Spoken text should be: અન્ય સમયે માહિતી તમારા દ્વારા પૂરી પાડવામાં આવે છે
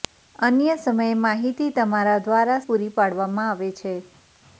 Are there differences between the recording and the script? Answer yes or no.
no